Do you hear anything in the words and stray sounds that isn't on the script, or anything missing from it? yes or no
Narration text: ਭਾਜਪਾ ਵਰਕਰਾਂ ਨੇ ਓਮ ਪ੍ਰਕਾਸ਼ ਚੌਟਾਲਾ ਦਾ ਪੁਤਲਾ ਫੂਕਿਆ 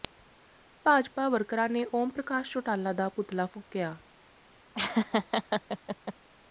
yes